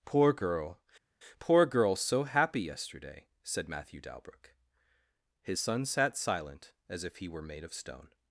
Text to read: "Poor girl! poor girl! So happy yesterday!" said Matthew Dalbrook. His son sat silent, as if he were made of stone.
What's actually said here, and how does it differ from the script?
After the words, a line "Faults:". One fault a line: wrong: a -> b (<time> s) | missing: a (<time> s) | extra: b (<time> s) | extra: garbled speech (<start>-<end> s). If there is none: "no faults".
"Poor girl! poor girl! So happy yesterday!" said Matthew Dalbrook. His son sat silent, as if he were made of stone.
Faults:
no faults